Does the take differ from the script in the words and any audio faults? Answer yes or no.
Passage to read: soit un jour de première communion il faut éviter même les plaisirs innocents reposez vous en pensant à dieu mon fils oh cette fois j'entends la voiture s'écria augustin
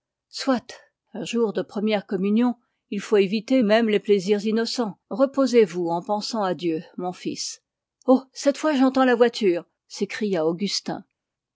no